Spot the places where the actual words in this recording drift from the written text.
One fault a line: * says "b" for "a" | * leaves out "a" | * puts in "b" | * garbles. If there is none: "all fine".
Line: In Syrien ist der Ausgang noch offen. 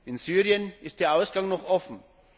all fine